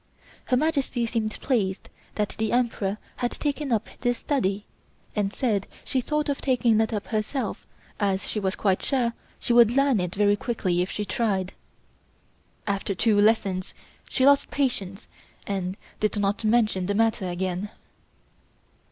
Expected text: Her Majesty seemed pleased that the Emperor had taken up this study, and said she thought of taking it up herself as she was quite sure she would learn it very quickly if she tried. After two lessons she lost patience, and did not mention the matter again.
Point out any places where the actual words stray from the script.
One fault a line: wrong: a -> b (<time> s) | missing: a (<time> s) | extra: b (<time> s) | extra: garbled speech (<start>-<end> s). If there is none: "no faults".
no faults